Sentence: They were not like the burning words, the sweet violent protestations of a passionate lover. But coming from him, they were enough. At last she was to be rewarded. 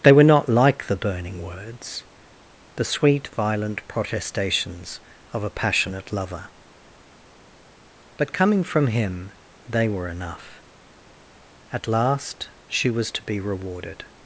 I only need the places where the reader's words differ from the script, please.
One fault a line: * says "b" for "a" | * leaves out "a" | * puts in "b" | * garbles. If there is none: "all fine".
all fine